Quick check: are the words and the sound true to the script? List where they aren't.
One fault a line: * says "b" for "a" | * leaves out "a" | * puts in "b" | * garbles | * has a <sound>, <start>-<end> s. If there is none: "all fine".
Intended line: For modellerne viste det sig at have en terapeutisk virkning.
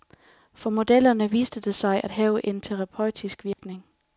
* has a dropout, 3.5-3.6 s